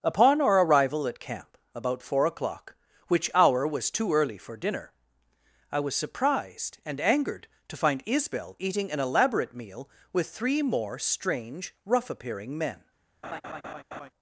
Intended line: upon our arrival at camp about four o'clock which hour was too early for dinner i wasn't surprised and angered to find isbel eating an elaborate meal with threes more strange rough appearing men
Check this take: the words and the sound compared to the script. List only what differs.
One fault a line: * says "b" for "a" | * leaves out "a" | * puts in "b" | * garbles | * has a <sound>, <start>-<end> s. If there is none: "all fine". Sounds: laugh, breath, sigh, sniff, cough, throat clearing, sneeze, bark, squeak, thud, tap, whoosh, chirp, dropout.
* says "was" for "wasn't"
* says "three" for "threes"
* has a laugh, 13.2-14.1 s